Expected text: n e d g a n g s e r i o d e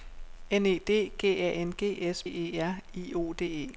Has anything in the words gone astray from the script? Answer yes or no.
no